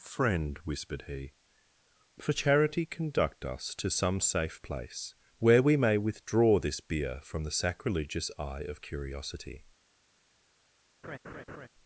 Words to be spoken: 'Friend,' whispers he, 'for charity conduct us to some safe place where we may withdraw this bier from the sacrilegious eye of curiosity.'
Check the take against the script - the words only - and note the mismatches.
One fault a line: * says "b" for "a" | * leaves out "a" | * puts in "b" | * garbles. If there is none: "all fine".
* says "whispered" for "whispers"